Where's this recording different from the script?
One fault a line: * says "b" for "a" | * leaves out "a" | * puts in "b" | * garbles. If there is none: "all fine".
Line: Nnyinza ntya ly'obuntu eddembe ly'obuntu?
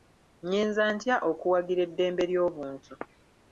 * says "okuwagira" for "ly'obuntu"